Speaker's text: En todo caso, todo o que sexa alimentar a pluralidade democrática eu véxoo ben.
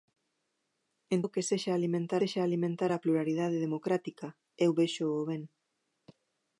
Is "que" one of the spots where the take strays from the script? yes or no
yes